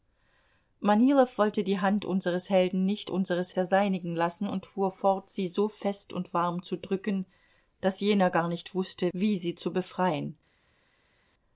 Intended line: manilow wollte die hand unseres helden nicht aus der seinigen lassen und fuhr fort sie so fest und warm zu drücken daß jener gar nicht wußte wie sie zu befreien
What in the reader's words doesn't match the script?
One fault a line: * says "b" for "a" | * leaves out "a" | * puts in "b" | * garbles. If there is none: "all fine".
* says "unseres" for "aus"